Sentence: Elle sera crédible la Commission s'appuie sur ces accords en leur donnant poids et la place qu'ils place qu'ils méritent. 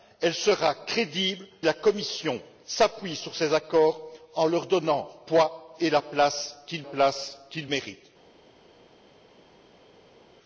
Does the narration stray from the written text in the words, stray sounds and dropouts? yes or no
no